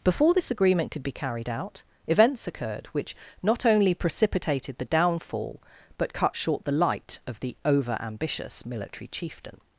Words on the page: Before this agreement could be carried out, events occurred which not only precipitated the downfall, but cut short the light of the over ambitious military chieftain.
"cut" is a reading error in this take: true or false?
false